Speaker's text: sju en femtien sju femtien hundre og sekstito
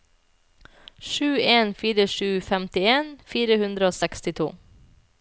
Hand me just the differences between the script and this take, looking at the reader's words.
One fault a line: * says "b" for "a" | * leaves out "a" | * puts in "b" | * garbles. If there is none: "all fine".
* says "fire" for "femtien"
* puts in "fire"